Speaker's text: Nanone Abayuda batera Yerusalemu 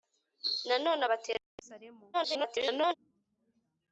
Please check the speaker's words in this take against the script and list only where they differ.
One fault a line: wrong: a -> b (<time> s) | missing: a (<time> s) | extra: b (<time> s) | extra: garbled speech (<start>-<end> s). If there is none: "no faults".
missing: Abayuda (1.0 s)
extra: garbled speech (2.1-2.9 s)